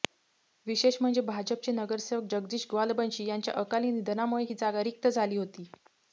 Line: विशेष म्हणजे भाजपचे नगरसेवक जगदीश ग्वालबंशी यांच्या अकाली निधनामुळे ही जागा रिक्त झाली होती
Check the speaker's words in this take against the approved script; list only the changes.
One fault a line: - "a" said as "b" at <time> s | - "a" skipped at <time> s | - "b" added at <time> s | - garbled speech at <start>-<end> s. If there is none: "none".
none